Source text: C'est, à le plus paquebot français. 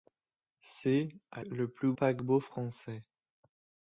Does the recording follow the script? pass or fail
pass